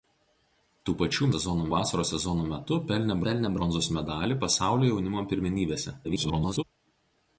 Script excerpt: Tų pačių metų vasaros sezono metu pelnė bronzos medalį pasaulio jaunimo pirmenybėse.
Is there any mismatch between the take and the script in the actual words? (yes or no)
yes